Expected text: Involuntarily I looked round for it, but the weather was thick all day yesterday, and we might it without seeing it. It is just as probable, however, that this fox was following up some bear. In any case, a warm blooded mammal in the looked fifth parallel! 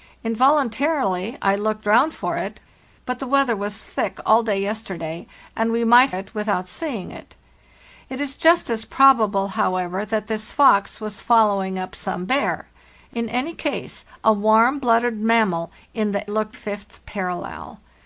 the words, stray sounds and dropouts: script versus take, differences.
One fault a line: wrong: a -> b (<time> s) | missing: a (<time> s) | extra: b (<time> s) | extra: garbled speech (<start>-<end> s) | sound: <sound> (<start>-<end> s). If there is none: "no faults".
no faults